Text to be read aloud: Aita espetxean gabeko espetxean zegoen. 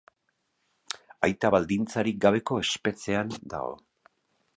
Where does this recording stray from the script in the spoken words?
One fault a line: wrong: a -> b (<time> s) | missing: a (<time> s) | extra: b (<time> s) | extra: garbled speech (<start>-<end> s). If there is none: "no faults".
wrong: espetxean -> baldintzarik (1.6 s)
wrong: zegoen -> dago (3.6 s)